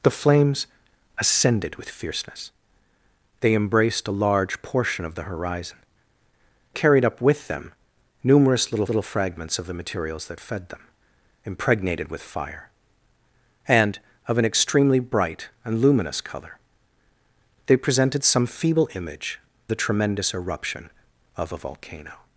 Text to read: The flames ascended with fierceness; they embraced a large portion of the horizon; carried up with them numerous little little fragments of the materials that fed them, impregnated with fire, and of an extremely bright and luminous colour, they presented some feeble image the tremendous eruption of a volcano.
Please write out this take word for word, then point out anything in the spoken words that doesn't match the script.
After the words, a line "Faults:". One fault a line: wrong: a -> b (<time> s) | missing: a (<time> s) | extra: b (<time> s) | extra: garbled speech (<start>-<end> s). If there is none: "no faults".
The flames ascended with fierceness; they embraced a large portion of the horizon; carried up with them numerous little little fragments of the materials that fed them, impregnated with fire, and of an extremely bright and luminous colour, they presented some feeble image the tremendous eruption of a volcano.
Faults:
no faults